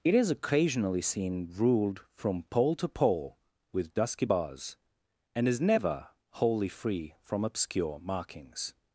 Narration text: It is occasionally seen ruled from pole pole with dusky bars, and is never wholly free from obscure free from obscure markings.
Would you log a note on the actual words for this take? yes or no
yes